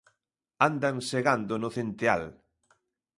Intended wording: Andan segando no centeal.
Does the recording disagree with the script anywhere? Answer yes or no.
no